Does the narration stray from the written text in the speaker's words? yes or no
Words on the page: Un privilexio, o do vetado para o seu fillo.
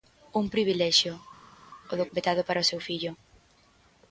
no